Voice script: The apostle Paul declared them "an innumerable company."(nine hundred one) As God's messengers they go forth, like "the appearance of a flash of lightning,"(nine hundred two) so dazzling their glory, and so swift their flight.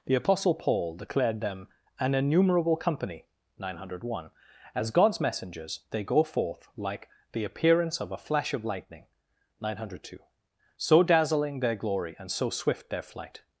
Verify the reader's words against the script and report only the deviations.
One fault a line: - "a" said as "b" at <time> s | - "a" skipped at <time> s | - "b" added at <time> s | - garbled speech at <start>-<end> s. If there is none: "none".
none